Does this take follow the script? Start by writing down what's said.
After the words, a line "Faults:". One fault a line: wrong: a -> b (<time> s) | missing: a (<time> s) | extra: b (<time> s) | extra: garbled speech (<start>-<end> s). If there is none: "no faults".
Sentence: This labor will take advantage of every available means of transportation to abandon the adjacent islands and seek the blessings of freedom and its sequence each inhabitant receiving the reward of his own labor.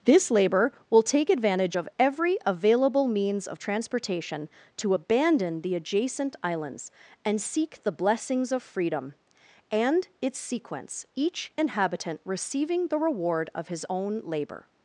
This labor will take advantage of every available means of transportation to abandon the adjacent islands and seek the blessings of freedom and its sequence each inhabitant receiving the reward of his own labor.
Faults:
no faults